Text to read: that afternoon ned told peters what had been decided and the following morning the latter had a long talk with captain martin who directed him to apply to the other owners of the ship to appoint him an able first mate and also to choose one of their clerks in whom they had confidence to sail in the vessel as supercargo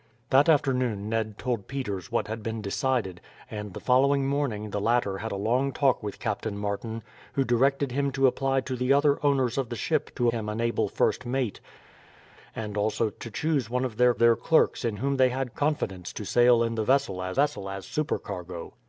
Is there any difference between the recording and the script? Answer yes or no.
yes